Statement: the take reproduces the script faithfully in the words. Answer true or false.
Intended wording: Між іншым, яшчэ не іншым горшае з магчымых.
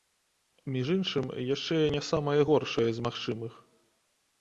false